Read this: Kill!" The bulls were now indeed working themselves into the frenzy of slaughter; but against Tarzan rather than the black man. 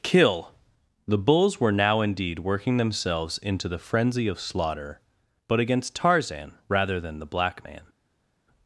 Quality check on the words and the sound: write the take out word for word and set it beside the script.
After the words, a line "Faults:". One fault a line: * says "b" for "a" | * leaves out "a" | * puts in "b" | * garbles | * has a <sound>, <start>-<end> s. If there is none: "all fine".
Kill!" The bulls were now indeed working themselves into the frenzy of slaughter; but against Tarzan rather than the black man.
Faults:
all fine